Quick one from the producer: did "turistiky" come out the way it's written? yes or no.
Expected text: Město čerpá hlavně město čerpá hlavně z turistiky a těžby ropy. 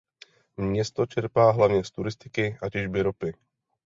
yes